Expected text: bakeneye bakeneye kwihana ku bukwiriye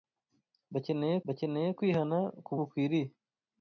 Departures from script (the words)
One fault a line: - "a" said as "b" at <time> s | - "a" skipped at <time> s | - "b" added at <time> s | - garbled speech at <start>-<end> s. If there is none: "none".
none